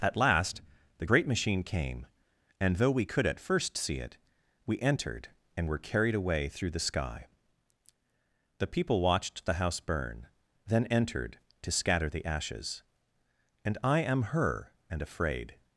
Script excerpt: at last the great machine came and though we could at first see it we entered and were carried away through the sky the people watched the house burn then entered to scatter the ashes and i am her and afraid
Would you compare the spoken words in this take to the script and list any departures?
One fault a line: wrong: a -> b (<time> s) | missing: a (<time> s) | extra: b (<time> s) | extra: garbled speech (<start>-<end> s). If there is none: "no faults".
no faults